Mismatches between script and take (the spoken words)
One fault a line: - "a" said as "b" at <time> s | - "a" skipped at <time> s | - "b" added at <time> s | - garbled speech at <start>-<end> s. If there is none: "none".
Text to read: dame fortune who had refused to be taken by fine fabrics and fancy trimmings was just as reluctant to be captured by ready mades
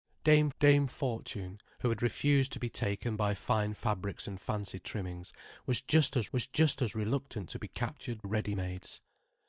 - "dame" added at 0.6 s
- "was just as" added at 6.3 s
- "by" skipped at 8.2 s